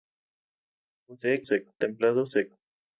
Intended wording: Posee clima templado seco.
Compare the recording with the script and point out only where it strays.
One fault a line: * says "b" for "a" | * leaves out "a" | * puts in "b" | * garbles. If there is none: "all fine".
* says "seco" for "clima"